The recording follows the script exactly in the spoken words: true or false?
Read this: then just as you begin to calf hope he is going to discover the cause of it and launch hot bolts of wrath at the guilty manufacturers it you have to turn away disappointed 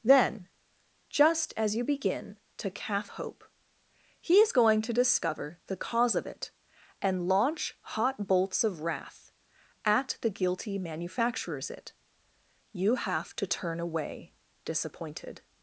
true